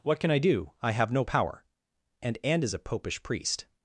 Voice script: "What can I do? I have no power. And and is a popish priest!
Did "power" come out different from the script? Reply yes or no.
no